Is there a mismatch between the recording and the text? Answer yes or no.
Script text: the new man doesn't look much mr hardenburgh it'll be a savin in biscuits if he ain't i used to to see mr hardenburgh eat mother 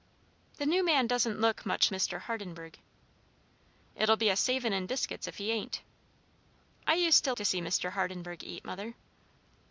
no